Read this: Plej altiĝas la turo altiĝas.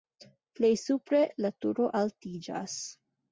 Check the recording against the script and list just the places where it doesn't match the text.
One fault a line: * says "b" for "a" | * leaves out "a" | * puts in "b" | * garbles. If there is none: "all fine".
* says "supre" for "altiĝas"